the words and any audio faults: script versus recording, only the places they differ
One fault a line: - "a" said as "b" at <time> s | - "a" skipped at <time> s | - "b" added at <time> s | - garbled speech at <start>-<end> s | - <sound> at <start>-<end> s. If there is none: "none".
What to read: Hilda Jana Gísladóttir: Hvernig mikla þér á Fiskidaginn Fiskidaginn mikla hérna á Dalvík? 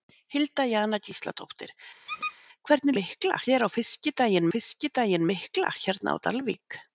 - squeak at 2.1-2.4 s